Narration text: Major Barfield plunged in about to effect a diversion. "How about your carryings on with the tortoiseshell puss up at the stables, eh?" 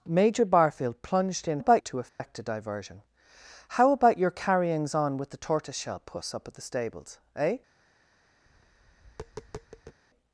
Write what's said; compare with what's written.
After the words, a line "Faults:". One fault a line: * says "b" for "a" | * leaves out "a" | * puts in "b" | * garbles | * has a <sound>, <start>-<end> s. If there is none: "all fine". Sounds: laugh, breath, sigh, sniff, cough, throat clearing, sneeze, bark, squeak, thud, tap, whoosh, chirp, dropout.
Major Barfield plunged in about to effect a diversion. "How about your carryings on with the tortoiseshell puss up at the stables, eh?"
Faults:
* has a dropout, 2.1-2.2 s
* has a tap, 8.5-10.0 s